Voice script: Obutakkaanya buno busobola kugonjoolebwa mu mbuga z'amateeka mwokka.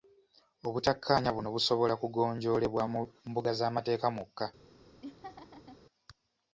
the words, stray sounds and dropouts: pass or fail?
fail